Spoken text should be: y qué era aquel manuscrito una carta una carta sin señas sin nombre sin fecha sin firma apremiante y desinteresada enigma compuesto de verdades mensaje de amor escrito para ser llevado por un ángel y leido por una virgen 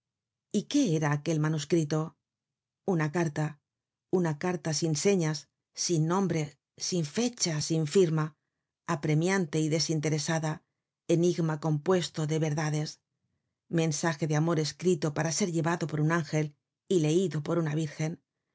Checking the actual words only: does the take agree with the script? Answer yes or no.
yes